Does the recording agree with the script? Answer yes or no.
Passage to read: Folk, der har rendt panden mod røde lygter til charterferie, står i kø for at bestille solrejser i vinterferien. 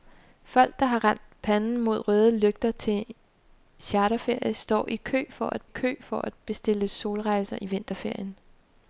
no